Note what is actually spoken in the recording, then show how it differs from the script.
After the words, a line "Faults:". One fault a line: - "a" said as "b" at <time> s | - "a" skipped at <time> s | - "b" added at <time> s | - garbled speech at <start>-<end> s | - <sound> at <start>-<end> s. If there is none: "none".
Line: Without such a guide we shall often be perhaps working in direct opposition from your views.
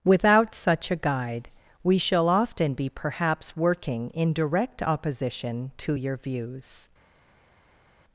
Without such a guide we shall often be perhaps working in direct opposition to your views.
Faults:
- "from" said as "to" at 5.8 s